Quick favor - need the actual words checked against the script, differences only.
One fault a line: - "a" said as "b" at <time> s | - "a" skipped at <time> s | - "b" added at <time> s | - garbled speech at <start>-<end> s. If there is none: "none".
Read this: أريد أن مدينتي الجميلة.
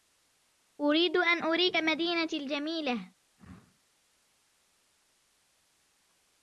- "أريك" added at 1.4 s